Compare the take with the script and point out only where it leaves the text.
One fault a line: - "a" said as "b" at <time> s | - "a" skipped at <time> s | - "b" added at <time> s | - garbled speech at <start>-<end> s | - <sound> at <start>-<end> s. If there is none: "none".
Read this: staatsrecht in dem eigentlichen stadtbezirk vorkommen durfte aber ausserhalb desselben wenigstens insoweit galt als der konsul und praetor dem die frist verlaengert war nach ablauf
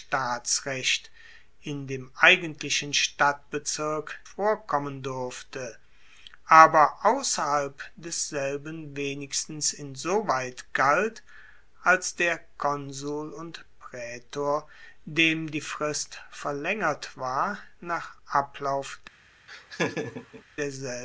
- laugh at 19.5-20.4 s